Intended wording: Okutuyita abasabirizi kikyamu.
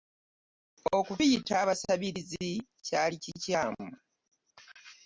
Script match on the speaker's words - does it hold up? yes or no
no